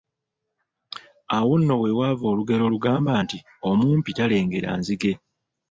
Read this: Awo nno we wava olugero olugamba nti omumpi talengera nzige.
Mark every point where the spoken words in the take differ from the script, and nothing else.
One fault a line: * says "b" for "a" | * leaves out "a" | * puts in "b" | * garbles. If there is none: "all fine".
all fine